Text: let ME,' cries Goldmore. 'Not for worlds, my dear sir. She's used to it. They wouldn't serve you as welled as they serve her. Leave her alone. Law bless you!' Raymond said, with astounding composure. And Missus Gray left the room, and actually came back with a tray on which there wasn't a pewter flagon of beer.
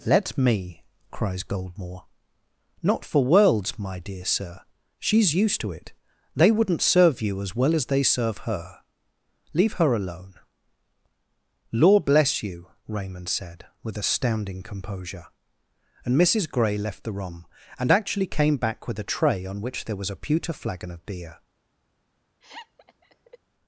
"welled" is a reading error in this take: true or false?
true